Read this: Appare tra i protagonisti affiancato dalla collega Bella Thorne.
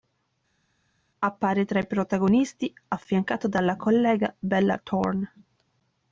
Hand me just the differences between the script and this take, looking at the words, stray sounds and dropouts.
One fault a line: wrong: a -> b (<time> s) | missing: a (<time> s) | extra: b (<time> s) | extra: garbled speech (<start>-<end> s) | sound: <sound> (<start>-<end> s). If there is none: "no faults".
no faults